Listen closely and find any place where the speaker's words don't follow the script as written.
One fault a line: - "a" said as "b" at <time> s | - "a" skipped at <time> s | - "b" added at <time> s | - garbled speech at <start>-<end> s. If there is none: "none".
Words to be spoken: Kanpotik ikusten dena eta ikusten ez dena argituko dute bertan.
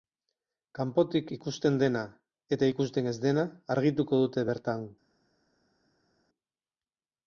none